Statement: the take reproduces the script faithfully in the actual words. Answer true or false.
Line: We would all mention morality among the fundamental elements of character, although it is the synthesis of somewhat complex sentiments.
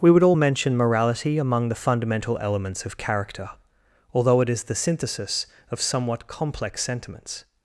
true